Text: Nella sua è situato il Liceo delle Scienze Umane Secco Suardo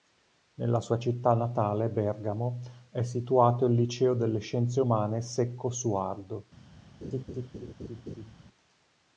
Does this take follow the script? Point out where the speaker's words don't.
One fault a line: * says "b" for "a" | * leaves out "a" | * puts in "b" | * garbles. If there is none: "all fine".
* puts in "città natale Bergamo"